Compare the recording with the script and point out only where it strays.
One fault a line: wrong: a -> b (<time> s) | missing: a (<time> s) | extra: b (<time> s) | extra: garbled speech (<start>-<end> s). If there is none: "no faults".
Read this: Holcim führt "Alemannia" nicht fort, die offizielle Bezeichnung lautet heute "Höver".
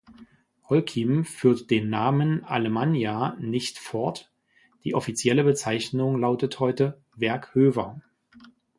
extra: den Namen (1.7 s)
extra: Werk (7.2 s)